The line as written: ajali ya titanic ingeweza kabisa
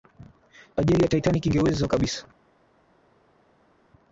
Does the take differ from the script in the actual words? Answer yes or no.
no